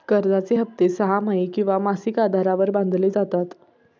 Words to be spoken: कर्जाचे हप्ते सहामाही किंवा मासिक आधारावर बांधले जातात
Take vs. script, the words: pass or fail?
pass